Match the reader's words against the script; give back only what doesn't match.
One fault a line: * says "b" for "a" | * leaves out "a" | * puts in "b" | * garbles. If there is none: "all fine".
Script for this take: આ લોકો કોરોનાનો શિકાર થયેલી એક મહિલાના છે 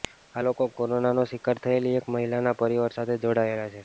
* puts in "પરિવાર સાથે જોડાયેલા"